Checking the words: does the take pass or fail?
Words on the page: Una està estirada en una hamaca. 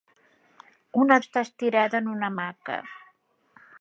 pass